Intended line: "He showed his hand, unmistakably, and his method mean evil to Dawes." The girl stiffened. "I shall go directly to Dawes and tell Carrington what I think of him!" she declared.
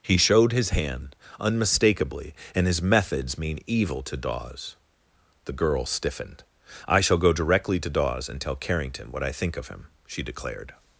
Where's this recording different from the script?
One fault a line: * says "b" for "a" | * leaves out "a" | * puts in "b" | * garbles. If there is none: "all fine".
* says "methods" for "method"